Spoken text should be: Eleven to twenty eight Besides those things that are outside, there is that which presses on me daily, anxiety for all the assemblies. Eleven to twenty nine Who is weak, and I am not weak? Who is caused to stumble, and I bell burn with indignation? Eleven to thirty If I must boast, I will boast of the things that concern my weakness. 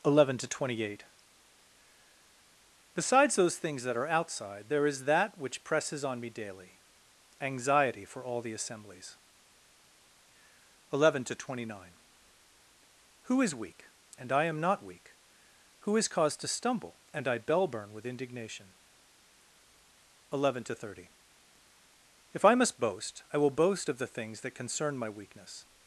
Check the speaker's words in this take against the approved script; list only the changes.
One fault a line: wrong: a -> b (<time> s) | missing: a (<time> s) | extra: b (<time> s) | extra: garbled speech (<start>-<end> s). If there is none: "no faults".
no faults